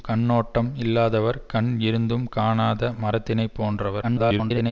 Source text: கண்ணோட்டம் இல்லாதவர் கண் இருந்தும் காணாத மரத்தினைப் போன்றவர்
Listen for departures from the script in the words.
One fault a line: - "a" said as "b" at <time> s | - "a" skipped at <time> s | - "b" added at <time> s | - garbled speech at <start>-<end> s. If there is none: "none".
- garbled speech at 4.0-4.7 s